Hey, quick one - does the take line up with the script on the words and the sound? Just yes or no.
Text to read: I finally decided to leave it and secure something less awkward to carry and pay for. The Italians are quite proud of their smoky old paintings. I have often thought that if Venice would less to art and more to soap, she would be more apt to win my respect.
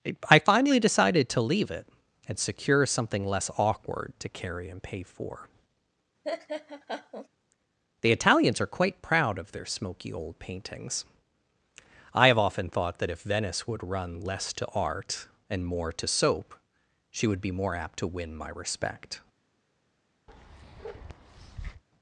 no